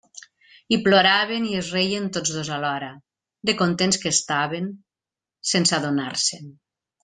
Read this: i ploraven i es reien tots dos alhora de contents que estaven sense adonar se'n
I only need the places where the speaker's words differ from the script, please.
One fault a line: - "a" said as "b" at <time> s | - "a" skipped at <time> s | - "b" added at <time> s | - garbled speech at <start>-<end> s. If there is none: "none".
none